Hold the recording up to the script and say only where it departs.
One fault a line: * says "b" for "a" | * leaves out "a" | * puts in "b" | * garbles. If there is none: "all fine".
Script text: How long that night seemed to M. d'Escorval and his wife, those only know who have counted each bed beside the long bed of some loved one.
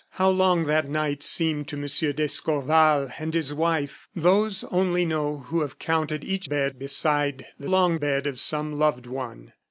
all fine